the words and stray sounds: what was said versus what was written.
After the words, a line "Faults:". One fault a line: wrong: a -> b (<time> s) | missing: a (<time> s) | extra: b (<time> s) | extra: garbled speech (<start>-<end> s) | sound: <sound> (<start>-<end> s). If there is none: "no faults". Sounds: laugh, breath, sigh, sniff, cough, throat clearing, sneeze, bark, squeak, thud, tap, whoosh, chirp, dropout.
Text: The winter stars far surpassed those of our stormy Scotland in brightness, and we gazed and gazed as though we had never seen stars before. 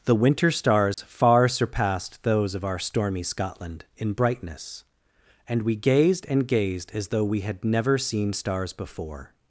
The winter stars far surpassed those of our stormy Scotland in brightness, and we gazed and gazed as though we had never seen stars before.
Faults:
sound: dropout (0.9-1.0 s)